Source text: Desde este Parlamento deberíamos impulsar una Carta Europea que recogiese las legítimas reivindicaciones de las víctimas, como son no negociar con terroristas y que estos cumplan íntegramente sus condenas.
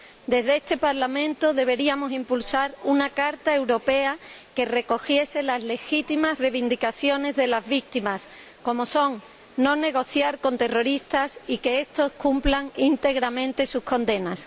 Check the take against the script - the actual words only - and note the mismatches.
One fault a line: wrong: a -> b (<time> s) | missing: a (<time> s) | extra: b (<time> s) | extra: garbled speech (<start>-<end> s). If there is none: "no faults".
no faults